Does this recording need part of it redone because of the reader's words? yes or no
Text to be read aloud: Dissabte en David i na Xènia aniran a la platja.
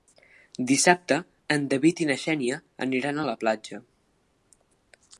no